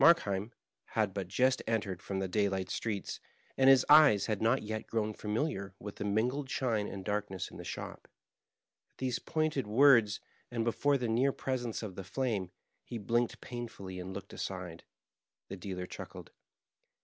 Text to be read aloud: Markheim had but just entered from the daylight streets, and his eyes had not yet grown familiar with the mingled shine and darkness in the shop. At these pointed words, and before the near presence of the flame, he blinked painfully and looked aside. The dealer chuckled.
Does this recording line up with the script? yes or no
yes